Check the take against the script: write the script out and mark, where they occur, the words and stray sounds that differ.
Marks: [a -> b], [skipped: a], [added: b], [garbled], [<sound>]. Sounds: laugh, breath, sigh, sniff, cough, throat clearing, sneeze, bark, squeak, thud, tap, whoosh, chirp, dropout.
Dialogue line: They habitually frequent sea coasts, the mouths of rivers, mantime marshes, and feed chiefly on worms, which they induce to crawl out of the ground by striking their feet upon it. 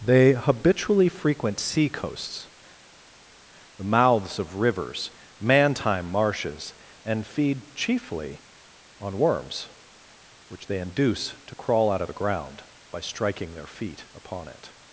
They habitually frequent sea coasts, the mouths of rivers, mantime marshes, and feed chiefly on worms, which they induce to crawl out of the ground by striking their feet upon it.